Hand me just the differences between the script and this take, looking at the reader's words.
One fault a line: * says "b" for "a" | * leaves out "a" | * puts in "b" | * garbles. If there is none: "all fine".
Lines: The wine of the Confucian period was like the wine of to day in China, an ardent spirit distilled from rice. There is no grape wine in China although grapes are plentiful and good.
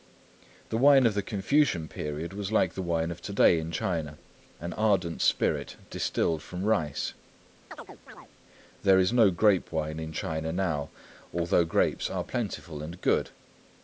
* puts in "now"